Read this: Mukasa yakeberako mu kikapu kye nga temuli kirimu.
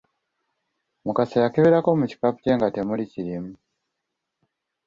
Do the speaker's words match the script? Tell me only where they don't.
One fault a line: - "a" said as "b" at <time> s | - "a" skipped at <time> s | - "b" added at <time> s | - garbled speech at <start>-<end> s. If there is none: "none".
none